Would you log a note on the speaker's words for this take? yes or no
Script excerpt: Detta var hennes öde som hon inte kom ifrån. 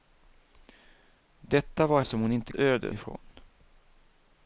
yes